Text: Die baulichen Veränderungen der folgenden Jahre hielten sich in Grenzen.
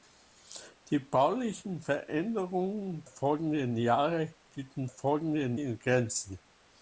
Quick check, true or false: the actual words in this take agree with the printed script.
false